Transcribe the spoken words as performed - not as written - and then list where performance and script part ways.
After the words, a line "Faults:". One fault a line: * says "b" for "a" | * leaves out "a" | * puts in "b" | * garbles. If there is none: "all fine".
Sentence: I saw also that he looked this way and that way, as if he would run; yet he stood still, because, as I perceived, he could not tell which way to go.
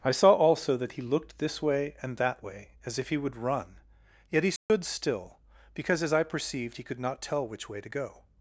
I saw also that he looked this way and that way, as if he would run; yet he stood still, because, as I perceived, he could not tell which way to go.
Faults:
all fine